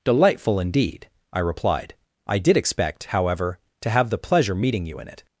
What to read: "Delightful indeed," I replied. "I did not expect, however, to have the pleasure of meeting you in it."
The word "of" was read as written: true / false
false